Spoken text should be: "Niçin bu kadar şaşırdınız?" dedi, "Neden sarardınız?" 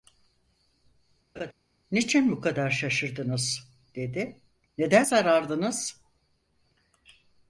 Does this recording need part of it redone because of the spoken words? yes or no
no